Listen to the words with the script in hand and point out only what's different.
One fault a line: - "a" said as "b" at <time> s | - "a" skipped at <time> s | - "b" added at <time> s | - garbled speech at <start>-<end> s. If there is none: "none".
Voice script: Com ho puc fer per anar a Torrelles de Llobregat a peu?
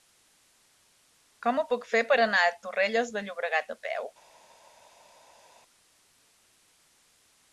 none